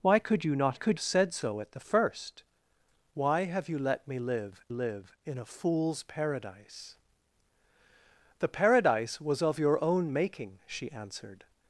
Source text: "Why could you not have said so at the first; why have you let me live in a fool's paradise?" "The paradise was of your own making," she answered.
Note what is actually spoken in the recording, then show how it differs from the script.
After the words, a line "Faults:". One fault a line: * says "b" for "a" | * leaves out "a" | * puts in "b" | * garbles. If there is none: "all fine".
"Why could you not could said so at the first; why have you let me live live in a fool's paradise?" "The paradise was of your own making," she answered.
Faults:
* says "could" for "have"
* puts in "live"